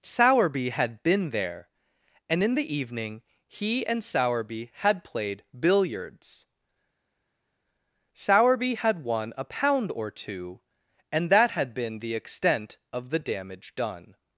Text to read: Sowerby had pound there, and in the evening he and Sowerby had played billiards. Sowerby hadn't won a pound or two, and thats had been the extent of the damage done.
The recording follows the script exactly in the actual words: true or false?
false